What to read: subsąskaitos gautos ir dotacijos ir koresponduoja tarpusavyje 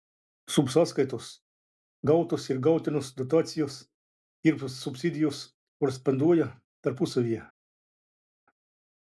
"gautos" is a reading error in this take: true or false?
false